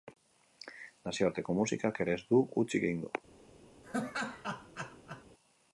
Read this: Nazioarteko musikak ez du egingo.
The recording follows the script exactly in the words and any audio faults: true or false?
false